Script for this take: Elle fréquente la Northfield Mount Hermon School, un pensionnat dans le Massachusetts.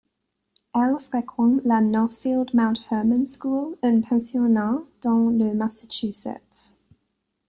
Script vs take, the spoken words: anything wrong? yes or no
no